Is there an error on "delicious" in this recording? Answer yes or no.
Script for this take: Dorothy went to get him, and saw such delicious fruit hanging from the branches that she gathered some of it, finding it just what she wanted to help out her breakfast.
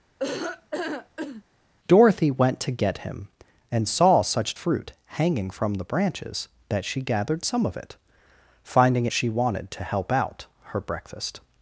yes